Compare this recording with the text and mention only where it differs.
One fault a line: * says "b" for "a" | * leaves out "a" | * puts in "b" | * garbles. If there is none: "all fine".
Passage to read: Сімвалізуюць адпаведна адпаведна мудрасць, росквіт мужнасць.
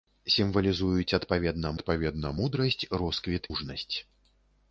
all fine